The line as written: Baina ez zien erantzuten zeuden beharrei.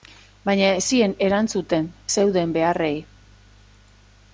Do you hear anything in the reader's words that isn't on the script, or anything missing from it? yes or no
no